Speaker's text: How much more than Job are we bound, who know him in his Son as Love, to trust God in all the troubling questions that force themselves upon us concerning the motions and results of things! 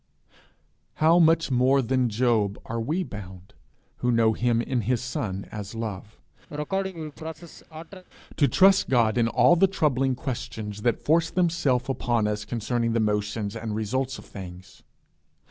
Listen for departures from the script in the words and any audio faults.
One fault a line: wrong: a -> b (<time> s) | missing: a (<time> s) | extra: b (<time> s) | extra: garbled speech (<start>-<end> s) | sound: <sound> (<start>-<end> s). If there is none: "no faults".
sound: sneeze (6.5-8.0 s)